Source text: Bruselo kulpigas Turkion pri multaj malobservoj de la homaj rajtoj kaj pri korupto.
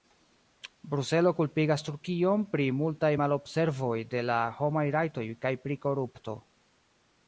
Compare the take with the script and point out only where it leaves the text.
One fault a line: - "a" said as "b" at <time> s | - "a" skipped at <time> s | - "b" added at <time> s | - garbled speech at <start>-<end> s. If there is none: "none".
none